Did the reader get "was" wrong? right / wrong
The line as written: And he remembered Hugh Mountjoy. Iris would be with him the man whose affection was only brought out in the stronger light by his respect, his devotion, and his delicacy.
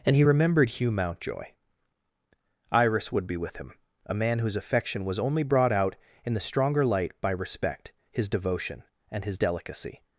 right